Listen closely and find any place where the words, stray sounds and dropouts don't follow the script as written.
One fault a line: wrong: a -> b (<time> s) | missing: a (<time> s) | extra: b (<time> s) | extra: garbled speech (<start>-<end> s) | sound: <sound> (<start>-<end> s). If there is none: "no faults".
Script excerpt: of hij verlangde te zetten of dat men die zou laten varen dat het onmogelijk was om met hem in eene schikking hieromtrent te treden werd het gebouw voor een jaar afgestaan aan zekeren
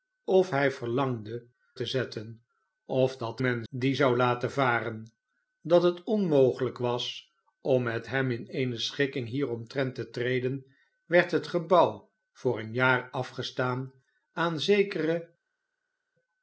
no faults